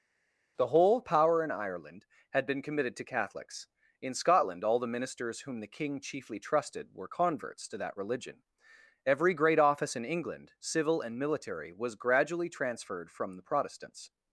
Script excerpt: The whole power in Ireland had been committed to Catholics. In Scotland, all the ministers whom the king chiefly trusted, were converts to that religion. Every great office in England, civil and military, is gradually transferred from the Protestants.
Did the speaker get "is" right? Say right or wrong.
wrong